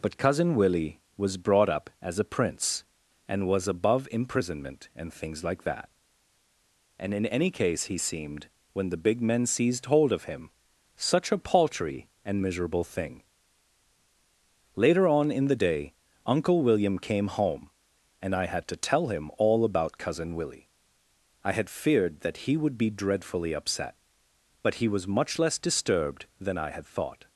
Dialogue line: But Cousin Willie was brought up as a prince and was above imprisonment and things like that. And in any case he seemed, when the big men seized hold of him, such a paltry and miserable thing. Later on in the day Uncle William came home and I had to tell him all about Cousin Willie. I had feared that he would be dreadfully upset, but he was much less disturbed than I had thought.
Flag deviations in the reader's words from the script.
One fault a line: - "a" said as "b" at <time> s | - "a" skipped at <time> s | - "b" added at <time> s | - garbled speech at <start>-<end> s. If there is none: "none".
none